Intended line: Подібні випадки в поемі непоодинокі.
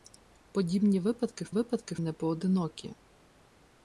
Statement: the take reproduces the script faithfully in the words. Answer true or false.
false